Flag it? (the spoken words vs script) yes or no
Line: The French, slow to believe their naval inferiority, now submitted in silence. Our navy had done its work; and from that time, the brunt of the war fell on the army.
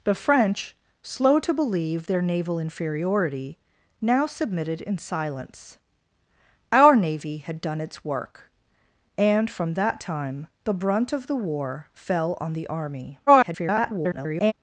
yes